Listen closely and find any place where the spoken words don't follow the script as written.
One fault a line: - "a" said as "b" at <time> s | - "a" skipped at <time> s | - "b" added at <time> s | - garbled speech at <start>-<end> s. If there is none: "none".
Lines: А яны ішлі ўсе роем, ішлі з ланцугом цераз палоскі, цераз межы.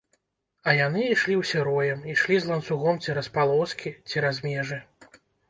none